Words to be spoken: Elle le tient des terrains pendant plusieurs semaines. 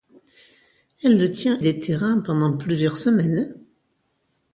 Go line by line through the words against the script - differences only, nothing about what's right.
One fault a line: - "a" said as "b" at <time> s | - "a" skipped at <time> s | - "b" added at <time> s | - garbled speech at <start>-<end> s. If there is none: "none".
none